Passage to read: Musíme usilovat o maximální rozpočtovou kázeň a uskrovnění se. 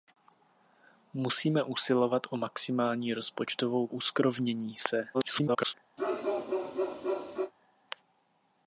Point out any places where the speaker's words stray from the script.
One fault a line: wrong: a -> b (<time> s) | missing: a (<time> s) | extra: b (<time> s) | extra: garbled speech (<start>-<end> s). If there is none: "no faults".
missing: kázeň a (3.9 s)
extra: garbled speech (5.1-5.7 s)